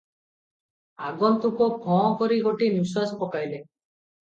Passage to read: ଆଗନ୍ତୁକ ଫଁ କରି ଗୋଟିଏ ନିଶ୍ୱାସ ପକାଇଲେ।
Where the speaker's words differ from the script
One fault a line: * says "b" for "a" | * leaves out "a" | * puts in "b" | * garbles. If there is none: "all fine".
all fine